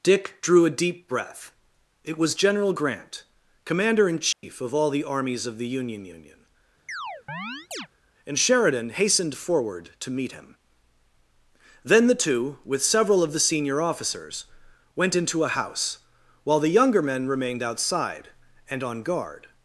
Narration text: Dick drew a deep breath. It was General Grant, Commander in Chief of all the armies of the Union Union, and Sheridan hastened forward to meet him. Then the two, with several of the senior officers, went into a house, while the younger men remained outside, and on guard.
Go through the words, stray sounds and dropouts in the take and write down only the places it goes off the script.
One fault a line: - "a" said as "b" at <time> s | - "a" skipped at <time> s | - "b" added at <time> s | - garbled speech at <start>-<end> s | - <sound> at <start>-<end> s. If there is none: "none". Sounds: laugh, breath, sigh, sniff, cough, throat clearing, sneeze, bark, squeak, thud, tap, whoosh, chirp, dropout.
- dropout at 4.3-4.4 s
- chirp at 6.9-7.9 s